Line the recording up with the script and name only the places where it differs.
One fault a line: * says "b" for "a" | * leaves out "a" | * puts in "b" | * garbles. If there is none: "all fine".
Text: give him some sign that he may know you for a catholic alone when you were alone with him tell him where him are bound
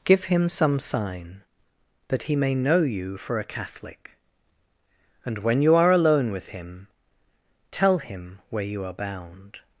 * says "and" for "alone"
* says "are" for "were"
* says "you" for "him"